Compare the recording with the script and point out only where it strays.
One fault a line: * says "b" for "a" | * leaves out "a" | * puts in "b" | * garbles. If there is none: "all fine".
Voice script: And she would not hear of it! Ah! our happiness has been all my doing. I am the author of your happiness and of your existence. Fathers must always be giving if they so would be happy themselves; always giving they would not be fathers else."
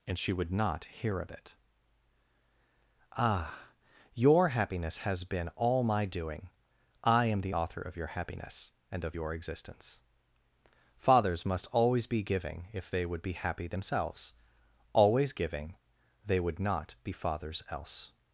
* says "your" for "our"
* leaves out "so"